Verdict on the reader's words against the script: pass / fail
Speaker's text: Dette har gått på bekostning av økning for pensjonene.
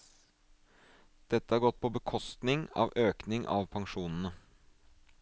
fail